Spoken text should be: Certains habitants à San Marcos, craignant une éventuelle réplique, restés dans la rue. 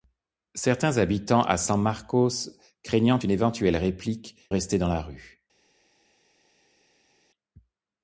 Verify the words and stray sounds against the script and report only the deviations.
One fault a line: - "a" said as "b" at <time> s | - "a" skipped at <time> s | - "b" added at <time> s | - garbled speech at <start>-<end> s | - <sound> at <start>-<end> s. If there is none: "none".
none